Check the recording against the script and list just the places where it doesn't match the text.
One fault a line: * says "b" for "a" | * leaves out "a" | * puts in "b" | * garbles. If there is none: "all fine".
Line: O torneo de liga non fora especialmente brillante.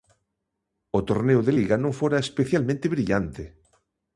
all fine